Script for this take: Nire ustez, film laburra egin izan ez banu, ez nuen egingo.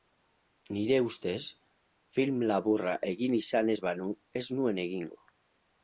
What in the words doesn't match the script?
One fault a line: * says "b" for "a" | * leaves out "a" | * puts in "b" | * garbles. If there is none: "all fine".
all fine